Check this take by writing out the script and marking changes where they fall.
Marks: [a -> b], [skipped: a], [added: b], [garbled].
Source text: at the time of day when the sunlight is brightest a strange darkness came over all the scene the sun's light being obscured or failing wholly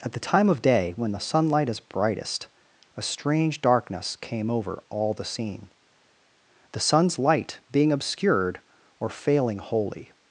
at the time of day when the sunlight is brightest a strange darkness came over all the scene the sun's light being obscured or failing wholly